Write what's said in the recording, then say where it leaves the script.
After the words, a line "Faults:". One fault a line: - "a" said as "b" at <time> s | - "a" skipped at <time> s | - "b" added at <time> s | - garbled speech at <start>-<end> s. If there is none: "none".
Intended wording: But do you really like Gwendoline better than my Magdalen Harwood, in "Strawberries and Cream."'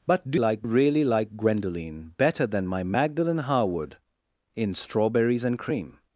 But do like really like Gwendoline better than my Magdalen Harwood, in "Strawberries and Cream."'
Faults:
- "you" said as "like" at 0.4 s